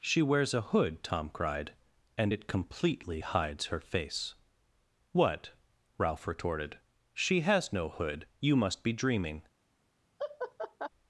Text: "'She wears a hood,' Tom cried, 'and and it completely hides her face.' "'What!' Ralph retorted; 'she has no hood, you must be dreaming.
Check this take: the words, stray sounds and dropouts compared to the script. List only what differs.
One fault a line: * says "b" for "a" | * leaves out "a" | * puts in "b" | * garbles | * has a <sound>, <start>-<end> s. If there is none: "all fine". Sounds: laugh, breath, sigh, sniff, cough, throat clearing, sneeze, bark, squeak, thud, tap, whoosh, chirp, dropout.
* leaves out "and"
* has a laugh, 10.2-10.9 s